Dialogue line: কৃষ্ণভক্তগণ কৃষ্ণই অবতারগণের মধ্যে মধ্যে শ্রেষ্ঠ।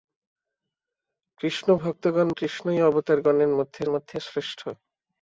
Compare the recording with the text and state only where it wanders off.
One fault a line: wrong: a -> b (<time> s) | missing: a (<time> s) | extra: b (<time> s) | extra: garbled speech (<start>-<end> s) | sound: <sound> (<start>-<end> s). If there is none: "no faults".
no faults